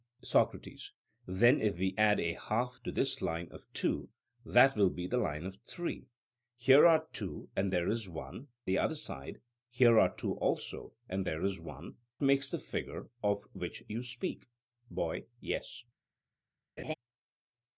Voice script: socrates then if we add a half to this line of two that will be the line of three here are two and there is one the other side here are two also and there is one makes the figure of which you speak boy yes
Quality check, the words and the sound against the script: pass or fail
fail